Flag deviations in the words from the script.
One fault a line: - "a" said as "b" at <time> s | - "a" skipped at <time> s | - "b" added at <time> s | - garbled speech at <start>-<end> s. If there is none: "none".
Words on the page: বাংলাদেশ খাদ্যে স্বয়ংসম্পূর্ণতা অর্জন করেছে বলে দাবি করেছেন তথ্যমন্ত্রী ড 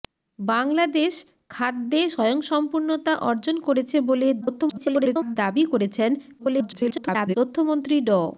- garbled speech at 4.4-5.4 s
- garbled speech at 6.4-7.4 s